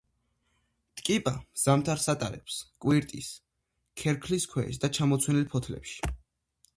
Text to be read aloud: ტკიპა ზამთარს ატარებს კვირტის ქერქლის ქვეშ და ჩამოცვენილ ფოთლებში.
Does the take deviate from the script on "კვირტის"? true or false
false